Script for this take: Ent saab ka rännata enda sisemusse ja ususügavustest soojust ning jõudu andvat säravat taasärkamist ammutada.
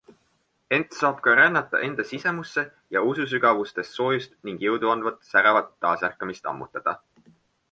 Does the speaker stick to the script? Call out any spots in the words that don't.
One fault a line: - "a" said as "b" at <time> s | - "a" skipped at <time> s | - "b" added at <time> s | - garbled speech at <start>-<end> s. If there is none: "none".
none